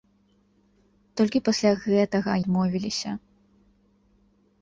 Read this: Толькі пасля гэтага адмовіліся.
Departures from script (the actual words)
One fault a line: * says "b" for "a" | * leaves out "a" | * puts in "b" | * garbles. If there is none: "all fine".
all fine